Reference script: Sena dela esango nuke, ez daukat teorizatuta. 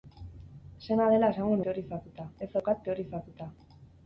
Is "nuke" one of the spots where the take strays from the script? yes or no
yes